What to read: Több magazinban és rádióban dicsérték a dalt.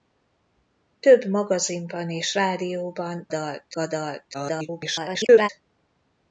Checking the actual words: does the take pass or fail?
fail